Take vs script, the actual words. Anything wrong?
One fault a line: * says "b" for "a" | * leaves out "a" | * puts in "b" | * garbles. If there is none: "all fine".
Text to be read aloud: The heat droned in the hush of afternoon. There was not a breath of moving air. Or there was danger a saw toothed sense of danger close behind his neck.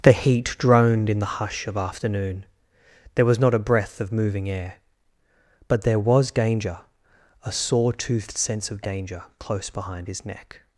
* says "But" for "Or"